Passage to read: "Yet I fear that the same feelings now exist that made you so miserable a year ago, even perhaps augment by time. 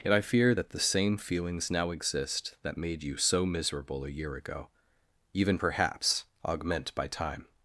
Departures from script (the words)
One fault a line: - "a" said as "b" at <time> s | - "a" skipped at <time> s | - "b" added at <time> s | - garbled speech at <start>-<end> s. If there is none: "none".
none